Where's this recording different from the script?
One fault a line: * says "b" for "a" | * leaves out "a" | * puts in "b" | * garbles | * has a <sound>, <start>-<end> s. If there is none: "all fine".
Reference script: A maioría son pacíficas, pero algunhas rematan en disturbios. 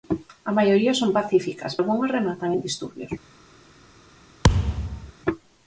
* leaves out "pero"
* has a thud, 4.4-5.1 s